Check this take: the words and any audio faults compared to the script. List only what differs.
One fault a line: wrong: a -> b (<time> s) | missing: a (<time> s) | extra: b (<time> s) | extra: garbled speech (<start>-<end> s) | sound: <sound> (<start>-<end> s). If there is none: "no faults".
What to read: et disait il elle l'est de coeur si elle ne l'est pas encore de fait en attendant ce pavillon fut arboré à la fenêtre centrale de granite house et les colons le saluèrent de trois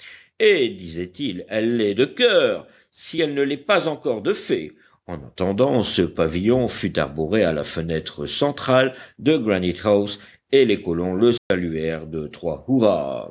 sound: dropout (11.4-11.5 s)